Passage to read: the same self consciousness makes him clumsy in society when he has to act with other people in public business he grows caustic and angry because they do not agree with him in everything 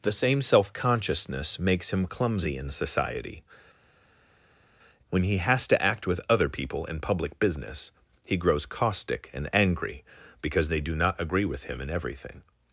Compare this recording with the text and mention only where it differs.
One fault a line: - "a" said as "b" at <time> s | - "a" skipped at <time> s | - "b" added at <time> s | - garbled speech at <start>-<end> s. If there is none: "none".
none